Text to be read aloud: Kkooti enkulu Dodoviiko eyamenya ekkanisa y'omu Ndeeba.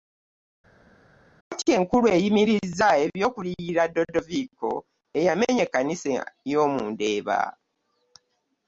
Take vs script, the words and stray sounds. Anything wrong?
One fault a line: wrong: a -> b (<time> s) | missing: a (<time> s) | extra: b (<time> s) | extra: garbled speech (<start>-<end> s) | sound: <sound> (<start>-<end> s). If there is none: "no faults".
extra: eyimirizza eby'okuliyirira (2.2 s)